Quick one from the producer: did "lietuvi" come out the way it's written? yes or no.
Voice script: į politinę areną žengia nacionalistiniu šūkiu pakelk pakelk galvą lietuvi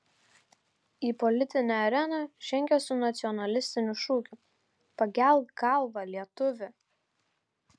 yes